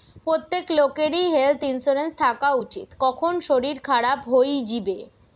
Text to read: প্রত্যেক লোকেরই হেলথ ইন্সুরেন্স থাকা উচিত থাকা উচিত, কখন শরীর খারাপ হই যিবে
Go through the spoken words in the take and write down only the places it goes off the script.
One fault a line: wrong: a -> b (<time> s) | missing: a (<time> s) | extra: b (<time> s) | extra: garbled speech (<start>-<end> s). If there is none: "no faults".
missing: থাকা উচিত (2.9 s)